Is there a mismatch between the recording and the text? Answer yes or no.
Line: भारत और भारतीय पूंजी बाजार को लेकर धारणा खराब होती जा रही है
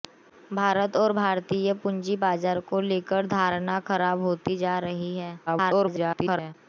yes